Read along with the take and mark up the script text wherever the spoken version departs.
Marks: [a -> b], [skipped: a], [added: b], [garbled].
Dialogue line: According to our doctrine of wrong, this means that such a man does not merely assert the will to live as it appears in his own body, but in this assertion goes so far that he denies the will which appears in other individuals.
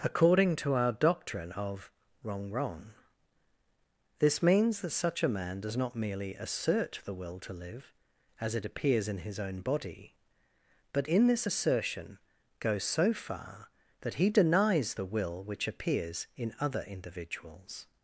According to our doctrine of wrong, [added: wrong] this means that such a man does not merely assert the will to live as it appears in his own body, but in this assertion goes so far that he denies the will which appears in other individuals.